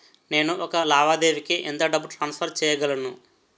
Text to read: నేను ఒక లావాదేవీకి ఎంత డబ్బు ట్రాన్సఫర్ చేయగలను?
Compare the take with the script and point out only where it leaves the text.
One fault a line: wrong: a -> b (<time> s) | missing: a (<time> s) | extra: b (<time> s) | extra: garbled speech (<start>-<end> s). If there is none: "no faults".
no faults